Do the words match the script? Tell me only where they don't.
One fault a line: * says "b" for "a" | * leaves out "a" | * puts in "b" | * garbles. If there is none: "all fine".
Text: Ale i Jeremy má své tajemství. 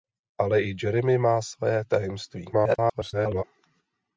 * garbles